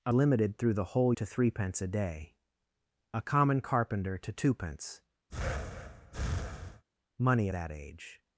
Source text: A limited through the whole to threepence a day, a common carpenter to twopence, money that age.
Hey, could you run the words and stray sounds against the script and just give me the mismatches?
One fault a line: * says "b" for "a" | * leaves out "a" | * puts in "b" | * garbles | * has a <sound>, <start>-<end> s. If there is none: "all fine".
* has a breath, 5.3-6.8 s